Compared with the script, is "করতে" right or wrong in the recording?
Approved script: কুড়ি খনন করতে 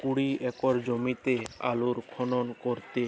right